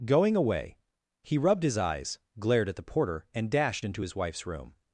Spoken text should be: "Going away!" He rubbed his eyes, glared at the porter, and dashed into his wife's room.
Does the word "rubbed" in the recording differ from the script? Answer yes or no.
no